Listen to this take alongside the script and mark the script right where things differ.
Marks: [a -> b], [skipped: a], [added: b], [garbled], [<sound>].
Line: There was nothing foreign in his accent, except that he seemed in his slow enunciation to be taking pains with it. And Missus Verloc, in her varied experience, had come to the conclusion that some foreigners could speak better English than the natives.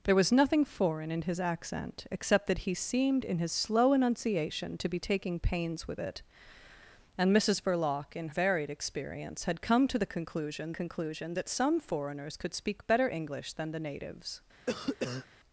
There was nothing foreign in his accent, except that he seemed in his slow enunciation to be taking pains with it. And Missus Verloc, in [skipped: her] varied experience, had come to the conclusion [added: conclusion] that some foreigners could speak better English than the natives. [cough]